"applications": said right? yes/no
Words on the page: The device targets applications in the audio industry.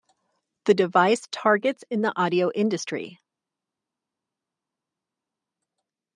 no